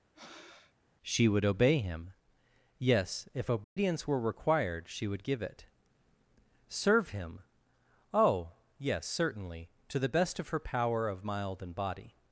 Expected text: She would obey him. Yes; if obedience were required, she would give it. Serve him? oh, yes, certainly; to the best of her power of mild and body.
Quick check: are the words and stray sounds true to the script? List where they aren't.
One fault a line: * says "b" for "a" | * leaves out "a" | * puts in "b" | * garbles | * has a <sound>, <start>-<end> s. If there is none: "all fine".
* has a breath, 0.1-0.7 s
* has a dropout, 3.6-3.8 s